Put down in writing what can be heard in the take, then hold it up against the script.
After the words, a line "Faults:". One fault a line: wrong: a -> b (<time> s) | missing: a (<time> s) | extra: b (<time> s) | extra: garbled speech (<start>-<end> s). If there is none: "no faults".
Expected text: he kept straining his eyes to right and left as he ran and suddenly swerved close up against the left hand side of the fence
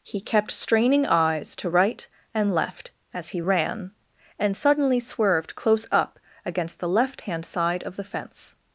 he kept straining eyes to right and left as he ran and suddenly swerved close up against the left hand side of the fence
Faults:
missing: his (1.1 s)